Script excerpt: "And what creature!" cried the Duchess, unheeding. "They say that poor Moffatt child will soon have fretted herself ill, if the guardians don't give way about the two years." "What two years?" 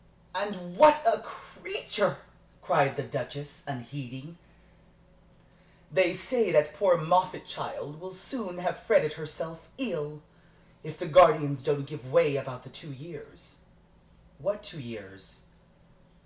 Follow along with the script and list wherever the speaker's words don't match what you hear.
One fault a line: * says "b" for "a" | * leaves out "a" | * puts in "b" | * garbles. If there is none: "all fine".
* puts in "a"